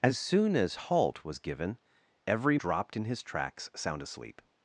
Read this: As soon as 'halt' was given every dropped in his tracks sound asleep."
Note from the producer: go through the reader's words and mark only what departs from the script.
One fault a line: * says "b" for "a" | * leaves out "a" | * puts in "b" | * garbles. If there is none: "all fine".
all fine